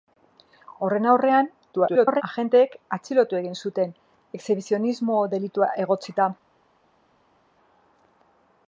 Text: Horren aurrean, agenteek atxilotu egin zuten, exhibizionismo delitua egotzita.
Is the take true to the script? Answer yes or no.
no